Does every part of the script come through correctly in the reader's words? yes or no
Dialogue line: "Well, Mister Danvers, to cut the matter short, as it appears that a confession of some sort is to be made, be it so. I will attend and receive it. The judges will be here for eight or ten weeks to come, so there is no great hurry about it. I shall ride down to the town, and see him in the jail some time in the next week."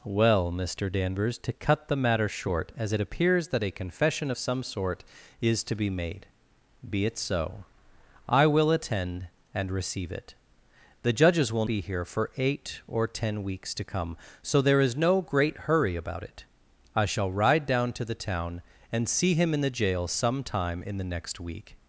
yes